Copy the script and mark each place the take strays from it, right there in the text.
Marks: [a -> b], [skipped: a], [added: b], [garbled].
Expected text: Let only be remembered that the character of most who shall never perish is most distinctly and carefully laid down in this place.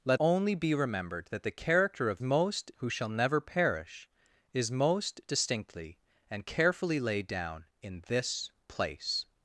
Let only be remembered that the character of most who shall never perish is most distinctly and carefully laid down in this place.